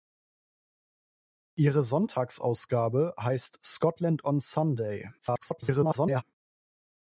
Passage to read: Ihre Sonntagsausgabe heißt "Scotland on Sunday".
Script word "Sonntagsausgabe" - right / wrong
right